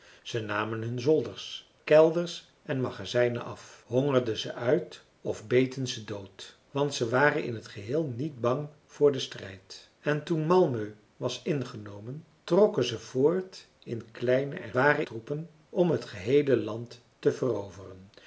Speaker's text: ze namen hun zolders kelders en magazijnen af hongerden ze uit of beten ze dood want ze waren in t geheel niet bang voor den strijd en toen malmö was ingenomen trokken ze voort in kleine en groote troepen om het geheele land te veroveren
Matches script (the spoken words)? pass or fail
fail